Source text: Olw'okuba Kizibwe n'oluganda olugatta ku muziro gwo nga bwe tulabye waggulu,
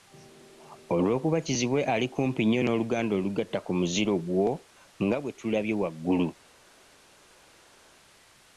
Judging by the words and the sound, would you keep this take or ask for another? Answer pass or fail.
fail